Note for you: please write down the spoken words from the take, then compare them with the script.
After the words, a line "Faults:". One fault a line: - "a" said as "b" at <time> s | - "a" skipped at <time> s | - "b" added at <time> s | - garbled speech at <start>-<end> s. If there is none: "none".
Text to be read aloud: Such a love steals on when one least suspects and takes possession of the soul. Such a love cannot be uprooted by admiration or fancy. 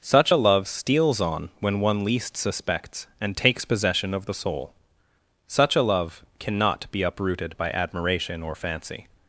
Such a love steals on when one least suspects and takes possession of the soul. Such a love cannot be uprooted by admiration or fancy.
Faults:
none